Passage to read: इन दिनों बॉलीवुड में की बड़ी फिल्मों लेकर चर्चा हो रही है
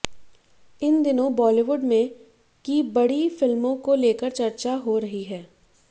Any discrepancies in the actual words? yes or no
yes